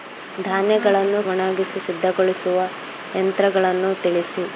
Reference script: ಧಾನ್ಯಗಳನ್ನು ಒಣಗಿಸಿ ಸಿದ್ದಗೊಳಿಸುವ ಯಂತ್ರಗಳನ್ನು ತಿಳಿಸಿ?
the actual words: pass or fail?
pass